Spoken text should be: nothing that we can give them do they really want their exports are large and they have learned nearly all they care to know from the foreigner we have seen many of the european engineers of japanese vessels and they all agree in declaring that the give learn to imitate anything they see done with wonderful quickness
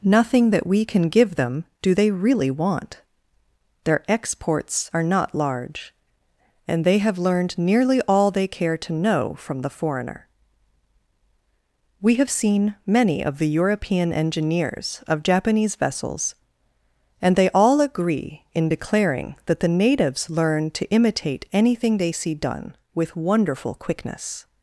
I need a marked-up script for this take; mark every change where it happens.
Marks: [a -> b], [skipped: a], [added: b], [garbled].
nothing that we can give them do they really want their exports are [added: not] large and they have learned nearly all they care to know from the foreigner we have seen many of the european engineers of japanese vessels and they all agree in declaring that the [give -> natives] learn to imitate anything they see done with wonderful quickness